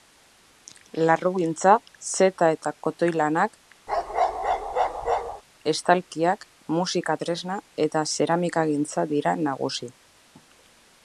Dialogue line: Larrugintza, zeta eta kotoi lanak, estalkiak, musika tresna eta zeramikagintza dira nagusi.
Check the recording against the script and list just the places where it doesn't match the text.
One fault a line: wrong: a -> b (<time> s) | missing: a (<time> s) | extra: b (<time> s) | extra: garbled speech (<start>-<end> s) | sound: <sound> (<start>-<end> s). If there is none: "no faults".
sound: bark (3.9-5.4 s)